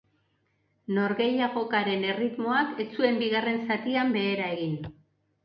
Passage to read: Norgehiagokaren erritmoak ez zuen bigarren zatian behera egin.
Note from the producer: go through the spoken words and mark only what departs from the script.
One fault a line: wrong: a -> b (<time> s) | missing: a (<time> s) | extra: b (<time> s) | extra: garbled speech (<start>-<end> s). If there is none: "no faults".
no faults